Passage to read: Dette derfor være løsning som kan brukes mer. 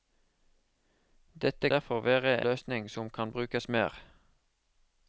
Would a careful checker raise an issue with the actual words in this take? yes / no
no